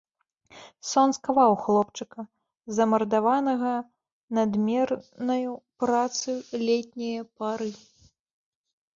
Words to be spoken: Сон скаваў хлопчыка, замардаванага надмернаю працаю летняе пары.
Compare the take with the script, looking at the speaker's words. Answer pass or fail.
pass